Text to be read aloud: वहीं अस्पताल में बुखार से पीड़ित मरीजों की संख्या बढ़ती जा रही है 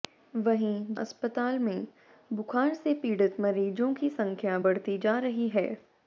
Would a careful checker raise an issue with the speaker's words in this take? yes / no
no